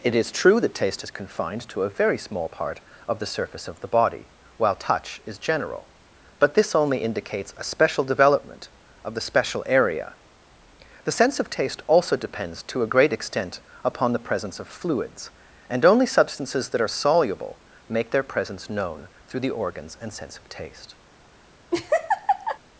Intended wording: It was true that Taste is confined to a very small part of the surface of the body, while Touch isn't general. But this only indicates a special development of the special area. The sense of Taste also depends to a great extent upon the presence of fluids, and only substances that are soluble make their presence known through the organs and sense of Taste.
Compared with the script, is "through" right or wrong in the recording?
right